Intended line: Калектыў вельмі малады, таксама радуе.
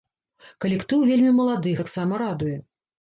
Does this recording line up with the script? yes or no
yes